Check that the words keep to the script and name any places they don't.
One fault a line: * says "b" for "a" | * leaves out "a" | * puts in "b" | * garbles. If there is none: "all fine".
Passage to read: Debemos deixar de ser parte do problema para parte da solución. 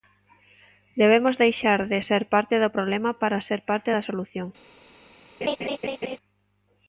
* puts in "ser"